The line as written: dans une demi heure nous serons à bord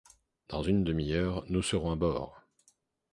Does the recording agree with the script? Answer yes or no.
yes